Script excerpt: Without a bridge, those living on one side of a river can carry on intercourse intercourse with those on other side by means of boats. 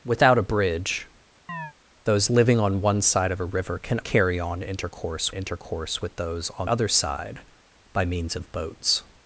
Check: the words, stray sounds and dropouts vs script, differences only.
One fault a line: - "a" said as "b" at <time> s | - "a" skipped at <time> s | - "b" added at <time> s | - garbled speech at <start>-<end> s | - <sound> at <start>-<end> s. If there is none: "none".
- chirp at 1.5-1.7 s